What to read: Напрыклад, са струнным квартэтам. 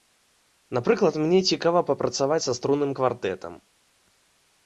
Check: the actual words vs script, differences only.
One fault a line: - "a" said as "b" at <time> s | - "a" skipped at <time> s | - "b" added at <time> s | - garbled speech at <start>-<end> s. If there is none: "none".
- "мне цікава папрацаваць" added at 1.2 s